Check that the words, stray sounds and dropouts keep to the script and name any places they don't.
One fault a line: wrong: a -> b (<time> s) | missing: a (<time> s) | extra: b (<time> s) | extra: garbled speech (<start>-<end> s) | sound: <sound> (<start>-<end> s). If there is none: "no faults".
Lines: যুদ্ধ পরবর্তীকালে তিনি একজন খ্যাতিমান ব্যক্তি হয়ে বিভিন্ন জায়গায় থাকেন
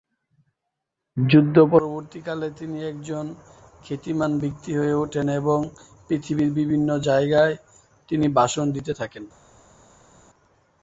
extra: ওঠেন এবং পৃথিবীর (5.0 s)
extra: তিনি ভাষণ দিতে (8.1 s)